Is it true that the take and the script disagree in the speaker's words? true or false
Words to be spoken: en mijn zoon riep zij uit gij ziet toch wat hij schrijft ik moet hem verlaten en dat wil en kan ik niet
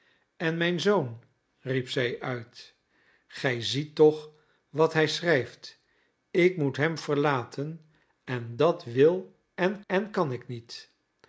true